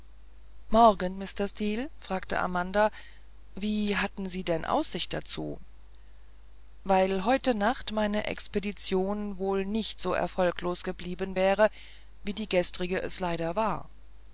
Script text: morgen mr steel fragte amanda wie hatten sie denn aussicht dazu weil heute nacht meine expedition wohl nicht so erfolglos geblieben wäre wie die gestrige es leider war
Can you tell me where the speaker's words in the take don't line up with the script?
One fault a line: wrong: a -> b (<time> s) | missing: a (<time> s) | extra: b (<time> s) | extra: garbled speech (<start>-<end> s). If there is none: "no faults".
no faults